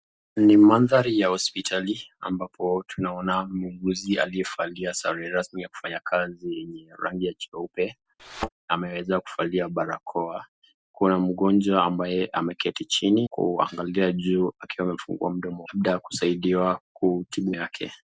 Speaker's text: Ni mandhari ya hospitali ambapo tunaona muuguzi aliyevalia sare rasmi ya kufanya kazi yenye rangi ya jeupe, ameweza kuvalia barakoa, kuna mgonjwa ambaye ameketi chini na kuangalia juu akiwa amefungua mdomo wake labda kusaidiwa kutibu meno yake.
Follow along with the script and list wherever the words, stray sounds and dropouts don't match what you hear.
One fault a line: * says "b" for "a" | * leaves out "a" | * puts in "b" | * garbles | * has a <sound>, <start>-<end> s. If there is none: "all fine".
* has a thud, 8.2-8.5 s
* leaves out "na"
* leaves out "wake"
* leaves out "meno"